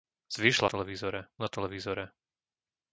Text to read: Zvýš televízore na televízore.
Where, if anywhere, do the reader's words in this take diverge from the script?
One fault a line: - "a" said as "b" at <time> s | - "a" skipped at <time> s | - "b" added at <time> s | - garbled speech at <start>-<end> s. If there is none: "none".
none